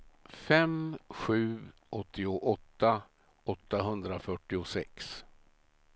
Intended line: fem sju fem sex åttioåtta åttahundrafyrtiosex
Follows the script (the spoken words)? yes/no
no